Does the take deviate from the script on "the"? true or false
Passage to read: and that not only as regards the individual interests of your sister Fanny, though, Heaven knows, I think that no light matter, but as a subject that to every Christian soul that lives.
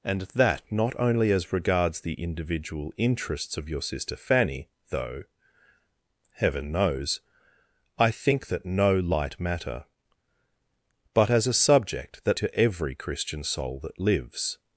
false